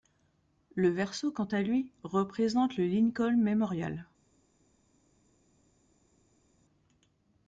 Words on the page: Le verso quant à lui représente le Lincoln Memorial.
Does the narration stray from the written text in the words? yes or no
no